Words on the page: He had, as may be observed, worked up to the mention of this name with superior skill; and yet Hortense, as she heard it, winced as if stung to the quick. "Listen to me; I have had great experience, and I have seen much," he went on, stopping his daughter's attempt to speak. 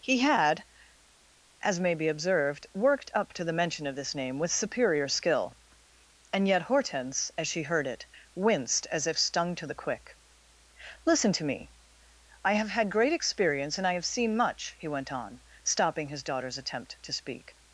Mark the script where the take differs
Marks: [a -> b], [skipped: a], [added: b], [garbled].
He had, as may be observed, worked up to the mention of this name with superior skill; and yet Hortense, as she heard it, winced as if stung to the quick. "Listen to me; I have had great experience, and I have seen much," he went on, stopping his daughter's attempt to speak.